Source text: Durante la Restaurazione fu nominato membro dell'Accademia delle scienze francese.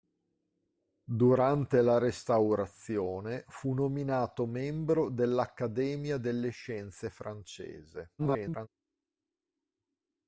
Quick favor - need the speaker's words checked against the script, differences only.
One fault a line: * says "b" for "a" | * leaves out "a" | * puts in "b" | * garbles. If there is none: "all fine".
* garbles